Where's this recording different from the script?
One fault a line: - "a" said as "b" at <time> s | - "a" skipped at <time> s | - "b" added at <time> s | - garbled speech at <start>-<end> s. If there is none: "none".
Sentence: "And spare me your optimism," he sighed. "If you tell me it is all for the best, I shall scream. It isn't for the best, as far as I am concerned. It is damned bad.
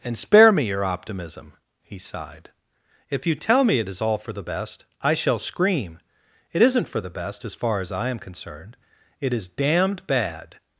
none